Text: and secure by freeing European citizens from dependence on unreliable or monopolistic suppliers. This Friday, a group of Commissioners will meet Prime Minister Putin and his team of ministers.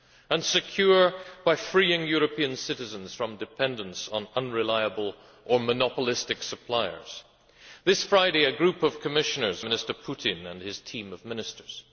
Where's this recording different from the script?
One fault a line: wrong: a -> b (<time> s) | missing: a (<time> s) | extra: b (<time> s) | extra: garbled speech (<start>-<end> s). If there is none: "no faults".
missing: will meet Prime (9.7 s)